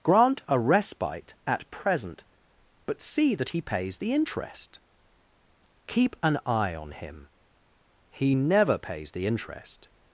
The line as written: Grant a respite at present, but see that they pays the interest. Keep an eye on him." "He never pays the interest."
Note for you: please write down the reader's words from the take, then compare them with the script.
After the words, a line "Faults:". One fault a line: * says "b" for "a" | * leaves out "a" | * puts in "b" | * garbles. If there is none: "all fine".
Grant a respite at present, but see that he pays the interest. Keep an eye on him." "He never pays the interest."
Faults:
* says "he" for "they"